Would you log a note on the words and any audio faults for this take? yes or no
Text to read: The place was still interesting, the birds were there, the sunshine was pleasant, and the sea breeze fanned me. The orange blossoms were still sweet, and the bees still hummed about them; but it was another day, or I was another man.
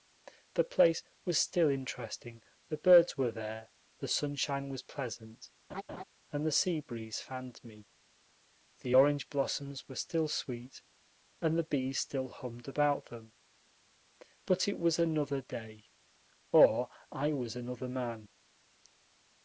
yes